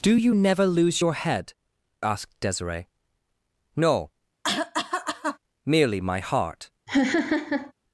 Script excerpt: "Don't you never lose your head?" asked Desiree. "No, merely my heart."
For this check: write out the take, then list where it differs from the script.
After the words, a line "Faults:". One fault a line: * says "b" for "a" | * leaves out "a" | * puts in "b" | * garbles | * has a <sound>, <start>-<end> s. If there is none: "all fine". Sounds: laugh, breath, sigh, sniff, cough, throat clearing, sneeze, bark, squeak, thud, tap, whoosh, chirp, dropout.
"Do you never lose your head?" asked Desiree. "No, merely my heart."
Faults:
* says "Do" for "Don't"
* has a cough, 4.4-5.4 s
* has a laugh, 6.9-7.7 s